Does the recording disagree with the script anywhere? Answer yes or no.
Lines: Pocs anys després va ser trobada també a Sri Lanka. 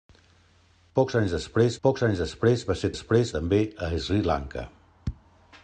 yes